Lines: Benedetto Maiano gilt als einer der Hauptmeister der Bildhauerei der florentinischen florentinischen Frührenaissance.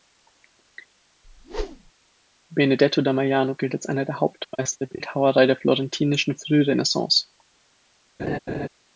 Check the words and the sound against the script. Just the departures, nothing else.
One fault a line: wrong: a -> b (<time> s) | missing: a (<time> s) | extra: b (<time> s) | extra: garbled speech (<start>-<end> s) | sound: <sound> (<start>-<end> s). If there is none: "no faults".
sound: whoosh (1.2-1.9 s)
extra: da (3.0 s)
missing: florentinischen (6.4 s)
sound: laugh (8.2-8.7 s)